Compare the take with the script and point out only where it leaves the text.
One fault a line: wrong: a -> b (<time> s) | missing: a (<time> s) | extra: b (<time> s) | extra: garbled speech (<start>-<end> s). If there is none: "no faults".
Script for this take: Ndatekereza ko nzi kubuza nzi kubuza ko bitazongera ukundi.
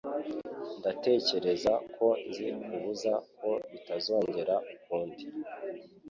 missing: nzi kubuza (3.1 s)